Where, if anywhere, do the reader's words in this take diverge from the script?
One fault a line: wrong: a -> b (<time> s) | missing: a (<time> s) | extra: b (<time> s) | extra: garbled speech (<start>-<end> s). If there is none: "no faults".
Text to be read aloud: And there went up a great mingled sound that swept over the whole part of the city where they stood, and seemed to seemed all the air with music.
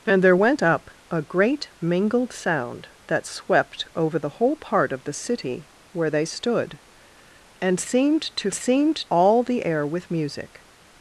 no faults